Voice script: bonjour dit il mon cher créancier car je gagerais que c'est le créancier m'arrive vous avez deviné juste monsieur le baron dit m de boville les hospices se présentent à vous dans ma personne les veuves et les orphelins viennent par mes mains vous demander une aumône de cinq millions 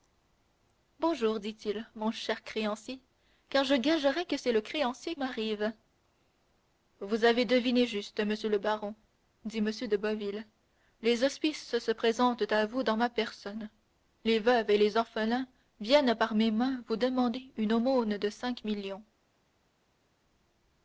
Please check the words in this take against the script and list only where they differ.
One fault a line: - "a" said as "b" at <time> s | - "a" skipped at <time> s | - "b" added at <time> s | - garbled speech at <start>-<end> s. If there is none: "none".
none